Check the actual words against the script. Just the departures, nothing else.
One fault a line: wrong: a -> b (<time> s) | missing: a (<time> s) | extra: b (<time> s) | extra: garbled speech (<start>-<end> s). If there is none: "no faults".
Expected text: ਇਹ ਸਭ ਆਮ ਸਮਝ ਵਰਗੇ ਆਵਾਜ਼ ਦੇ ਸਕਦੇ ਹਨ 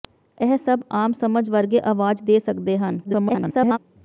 extra: garbled speech (3.0-3.8 s)